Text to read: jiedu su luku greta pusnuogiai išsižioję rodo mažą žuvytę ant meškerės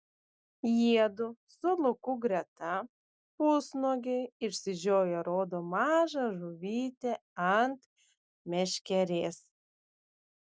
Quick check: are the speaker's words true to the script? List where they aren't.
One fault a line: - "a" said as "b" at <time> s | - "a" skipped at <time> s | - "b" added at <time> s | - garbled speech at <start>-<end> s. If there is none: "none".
none